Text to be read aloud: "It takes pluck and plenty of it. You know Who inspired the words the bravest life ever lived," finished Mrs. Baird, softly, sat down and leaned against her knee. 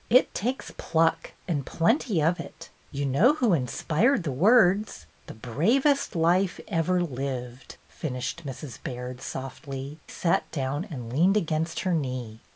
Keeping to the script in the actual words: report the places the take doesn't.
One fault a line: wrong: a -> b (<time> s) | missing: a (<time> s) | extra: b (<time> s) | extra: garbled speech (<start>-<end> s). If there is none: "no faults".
no faults